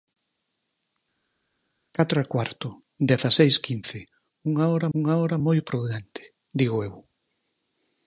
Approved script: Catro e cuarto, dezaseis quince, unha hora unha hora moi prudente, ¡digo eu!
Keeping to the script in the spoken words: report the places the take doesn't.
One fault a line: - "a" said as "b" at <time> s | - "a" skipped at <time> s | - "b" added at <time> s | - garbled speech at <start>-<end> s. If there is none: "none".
none